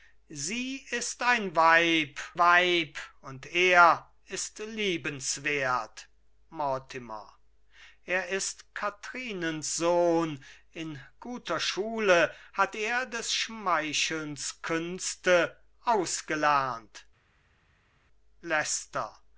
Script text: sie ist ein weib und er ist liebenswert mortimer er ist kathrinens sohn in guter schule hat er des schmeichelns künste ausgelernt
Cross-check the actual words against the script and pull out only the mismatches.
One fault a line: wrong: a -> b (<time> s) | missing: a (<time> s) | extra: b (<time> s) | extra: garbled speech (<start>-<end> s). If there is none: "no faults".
extra: weib (2.4 s)